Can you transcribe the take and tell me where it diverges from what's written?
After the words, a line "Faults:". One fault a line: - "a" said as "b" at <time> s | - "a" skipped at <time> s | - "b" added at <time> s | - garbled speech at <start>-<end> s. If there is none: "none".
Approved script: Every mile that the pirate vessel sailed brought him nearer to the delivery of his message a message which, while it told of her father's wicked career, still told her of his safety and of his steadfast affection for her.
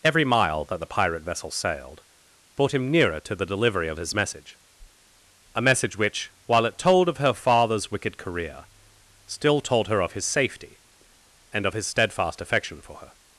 Every mile that the pirate vessel sailed brought him nearer to the delivery of his message a message which, while it told of her father's wicked career, still told her of his safety and of his steadfast affection for her.
Faults:
none